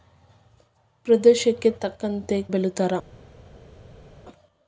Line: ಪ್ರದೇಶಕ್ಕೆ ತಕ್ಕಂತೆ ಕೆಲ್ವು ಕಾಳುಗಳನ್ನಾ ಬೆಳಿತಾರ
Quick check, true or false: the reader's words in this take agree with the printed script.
false